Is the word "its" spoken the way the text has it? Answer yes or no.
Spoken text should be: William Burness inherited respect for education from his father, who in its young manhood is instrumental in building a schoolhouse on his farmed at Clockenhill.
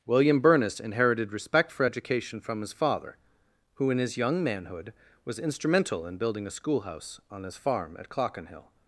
no